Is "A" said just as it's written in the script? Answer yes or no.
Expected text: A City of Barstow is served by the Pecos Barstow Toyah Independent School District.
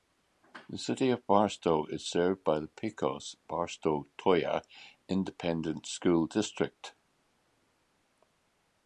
no